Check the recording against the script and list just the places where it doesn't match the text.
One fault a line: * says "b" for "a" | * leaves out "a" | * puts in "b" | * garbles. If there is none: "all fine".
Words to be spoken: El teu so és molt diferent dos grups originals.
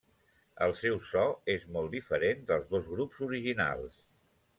* says "seu" for "teu"
* puts in "dels"